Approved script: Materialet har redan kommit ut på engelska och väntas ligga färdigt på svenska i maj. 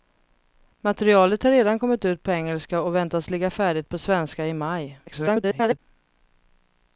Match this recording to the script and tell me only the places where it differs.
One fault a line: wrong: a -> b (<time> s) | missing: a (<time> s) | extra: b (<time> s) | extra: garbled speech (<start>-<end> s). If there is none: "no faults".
extra: garbled speech (5.1-5.8 s)